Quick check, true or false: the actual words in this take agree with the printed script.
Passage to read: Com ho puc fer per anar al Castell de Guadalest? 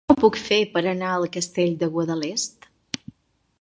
true